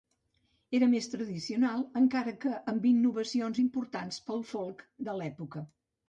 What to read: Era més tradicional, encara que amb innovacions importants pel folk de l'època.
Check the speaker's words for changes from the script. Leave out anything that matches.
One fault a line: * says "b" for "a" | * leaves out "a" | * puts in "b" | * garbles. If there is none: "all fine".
all fine